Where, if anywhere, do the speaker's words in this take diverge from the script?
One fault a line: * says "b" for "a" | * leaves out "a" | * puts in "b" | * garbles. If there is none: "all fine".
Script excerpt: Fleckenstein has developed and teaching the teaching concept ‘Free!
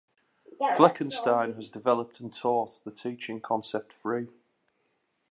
* says "taught" for "teaching"